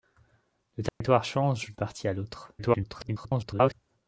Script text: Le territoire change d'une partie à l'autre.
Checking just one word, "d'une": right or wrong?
wrong